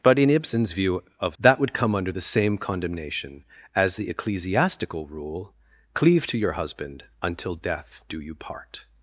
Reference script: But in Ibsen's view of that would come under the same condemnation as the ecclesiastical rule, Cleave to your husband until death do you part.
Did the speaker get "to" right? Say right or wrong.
right